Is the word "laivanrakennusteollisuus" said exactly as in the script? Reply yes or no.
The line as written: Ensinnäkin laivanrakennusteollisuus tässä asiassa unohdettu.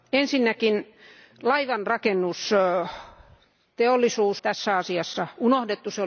yes